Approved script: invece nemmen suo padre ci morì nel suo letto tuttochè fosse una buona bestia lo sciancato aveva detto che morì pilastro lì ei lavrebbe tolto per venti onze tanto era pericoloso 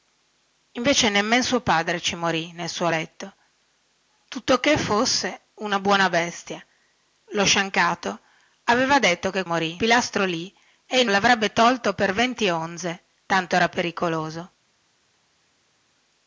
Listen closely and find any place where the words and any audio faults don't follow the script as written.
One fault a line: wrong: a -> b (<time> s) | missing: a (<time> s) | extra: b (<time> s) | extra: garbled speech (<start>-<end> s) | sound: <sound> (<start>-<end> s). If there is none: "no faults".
no faults